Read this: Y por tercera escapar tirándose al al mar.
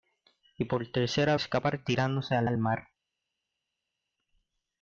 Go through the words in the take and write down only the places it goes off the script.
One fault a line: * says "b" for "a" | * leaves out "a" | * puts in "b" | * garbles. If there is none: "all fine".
all fine